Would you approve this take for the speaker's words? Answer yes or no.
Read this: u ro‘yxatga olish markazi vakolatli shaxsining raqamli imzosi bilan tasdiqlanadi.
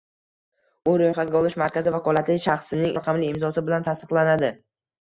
yes